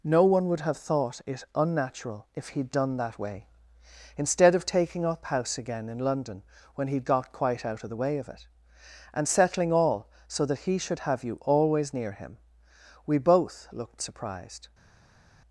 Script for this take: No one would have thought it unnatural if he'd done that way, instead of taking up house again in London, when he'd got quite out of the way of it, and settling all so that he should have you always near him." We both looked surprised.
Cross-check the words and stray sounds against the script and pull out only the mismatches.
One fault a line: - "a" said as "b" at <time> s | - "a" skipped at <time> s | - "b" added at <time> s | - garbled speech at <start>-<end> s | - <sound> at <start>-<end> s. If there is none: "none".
none